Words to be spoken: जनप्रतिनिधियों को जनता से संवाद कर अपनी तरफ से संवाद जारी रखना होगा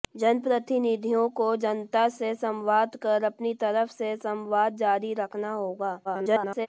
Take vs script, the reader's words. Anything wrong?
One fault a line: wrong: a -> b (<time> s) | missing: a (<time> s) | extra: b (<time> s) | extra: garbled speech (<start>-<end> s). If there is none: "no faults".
extra: garbled speech (6.0-6.7 s)